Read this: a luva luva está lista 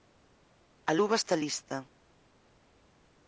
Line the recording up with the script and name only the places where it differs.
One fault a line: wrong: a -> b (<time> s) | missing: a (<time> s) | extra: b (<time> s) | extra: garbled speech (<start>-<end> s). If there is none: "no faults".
missing: luva (1.2 s)